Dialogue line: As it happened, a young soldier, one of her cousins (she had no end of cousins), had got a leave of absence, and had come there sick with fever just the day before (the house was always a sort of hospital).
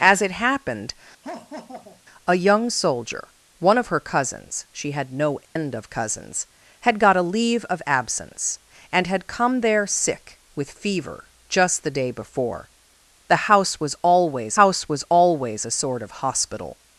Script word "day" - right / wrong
right